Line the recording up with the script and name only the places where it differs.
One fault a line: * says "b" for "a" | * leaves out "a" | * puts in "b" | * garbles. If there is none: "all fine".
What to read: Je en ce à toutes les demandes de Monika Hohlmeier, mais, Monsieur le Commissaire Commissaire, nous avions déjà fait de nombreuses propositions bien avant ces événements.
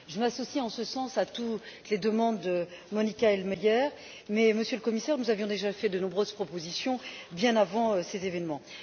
* puts in "m'associe"
* puts in "sens"
* leaves out "Commissaire"